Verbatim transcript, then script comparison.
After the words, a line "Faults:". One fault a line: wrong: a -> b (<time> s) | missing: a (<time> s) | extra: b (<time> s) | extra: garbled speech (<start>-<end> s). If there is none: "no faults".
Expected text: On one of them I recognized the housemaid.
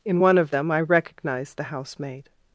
In one of them I recognized the housemaid.
Faults:
wrong: On -> In (0.1 s)